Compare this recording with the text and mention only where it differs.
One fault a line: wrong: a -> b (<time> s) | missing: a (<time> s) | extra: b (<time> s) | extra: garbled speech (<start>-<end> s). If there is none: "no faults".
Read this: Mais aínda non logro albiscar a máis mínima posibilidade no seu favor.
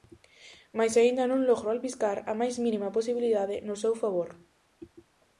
no faults